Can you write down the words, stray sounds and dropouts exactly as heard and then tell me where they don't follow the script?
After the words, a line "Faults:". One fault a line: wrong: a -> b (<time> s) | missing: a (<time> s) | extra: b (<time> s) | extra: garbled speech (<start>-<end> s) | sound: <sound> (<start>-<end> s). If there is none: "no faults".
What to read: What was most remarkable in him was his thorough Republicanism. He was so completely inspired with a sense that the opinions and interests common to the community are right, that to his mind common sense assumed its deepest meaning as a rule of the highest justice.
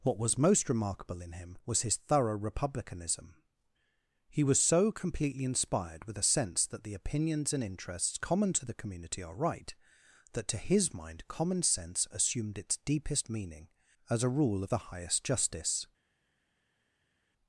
What was most remarkable in him was his thorough Republicanism. He was so completely inspired with a sense that the opinions and interests common to the community are right, that to his mind common sense assumed its deepest meaning as a rule of the highest justice.
Faults:
no faults